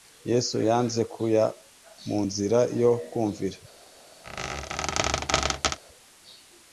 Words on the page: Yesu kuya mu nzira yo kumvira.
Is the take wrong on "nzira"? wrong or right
right